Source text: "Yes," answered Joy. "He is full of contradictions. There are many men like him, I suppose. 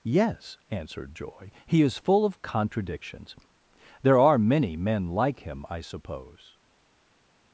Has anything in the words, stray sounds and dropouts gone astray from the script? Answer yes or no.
no